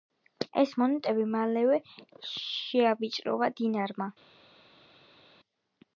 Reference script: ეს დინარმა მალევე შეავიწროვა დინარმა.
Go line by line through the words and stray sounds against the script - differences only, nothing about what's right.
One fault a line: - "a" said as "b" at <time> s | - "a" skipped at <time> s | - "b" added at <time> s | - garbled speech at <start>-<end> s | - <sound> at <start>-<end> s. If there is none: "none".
- "დინარმა" said as "მონეტები" at 0.8 s